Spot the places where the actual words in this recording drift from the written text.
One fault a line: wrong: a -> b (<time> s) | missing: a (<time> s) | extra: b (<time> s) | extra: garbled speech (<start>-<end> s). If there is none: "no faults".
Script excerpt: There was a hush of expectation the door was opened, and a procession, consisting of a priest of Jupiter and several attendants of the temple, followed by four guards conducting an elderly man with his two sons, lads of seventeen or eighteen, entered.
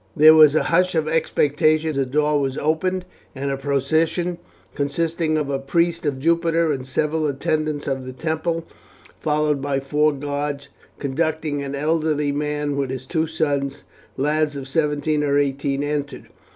no faults